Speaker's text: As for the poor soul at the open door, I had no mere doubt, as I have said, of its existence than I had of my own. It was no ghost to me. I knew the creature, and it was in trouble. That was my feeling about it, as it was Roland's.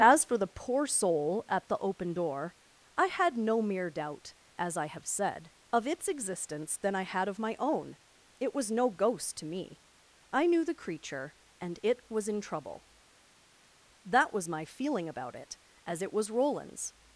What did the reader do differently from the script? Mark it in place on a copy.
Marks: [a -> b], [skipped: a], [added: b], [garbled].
As for the poor soul at the open door, I had no mere doubt, as I have said, of its existence than I had of my own. It was no ghost to me. I knew the creature, and it was in trouble. That was my feeling about it, as it was Roland's.